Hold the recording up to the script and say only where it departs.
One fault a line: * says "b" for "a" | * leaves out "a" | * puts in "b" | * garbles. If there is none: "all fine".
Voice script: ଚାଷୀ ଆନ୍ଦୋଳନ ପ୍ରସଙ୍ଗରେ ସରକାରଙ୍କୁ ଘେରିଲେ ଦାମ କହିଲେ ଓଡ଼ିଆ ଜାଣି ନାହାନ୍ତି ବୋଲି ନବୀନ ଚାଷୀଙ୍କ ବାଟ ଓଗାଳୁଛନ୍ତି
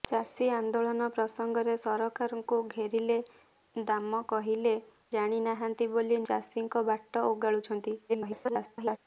* leaves out "ଓଡ଼ିଆ"
* leaves out "ନବୀନ"
* garbles